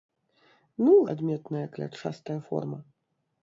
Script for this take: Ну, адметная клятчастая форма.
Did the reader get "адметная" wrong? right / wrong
right